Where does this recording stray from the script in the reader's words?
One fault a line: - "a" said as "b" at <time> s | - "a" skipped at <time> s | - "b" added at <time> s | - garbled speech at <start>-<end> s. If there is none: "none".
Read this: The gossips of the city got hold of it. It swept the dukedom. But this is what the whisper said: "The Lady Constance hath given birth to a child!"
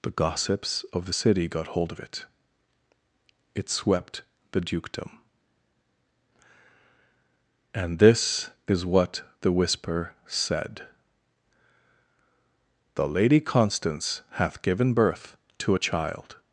- "But" said as "And" at 7.7 s